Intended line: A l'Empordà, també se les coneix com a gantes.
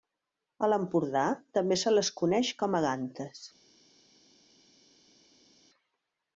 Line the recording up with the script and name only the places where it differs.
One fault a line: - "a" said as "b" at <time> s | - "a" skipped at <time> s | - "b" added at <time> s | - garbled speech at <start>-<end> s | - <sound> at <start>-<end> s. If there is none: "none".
none